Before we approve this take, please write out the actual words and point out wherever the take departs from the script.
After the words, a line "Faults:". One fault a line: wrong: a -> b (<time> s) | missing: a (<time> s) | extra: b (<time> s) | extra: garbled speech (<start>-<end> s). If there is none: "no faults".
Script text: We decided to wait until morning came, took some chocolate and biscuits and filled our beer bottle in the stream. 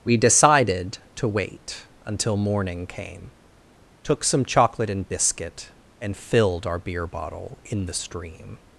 We decided to wait until morning came, took some chocolate and biscuit and filled our beer bottle in the stream.
Faults:
wrong: biscuits -> biscuit (5.1 s)